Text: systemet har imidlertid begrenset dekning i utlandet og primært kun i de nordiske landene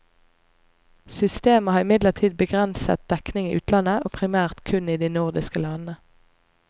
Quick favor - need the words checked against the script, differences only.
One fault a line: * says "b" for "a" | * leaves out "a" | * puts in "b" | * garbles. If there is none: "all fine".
all fine